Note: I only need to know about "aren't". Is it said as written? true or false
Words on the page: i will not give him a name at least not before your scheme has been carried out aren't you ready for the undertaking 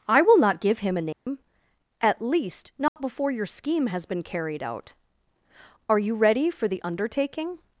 false